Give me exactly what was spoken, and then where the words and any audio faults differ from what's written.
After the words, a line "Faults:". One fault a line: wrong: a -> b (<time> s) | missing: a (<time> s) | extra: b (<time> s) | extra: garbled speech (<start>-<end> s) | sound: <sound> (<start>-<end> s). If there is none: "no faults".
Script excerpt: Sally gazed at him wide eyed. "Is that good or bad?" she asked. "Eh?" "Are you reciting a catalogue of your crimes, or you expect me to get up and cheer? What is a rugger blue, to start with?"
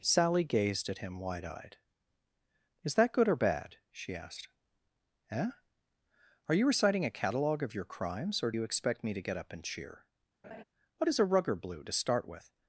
Sally gazed at him wide eyed. "Is that good or bad?" she asked. "Eh?" "Are you reciting a catalogue of your crimes, or you expect me to get up and cheer? What is a rugger blue, to start with?"
Faults:
sound: laugh (10.4-10.6 s)